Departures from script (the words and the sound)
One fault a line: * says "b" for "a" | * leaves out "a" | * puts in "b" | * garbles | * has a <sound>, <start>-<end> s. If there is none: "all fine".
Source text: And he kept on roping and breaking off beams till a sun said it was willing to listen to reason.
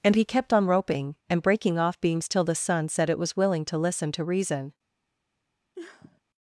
* says "the" for "a"
* has a sniff, 5.7-6.2 s